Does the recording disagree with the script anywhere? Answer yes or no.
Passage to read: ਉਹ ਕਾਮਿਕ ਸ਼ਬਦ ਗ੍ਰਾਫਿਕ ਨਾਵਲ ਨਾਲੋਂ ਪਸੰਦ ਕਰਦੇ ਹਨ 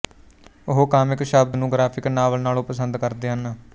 yes